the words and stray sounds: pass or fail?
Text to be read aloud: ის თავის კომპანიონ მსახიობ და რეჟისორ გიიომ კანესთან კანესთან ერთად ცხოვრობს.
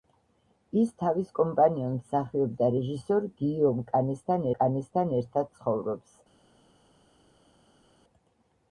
pass